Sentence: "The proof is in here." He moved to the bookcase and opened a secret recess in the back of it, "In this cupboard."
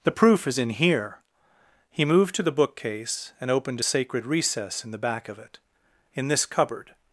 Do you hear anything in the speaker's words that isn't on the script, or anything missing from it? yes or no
yes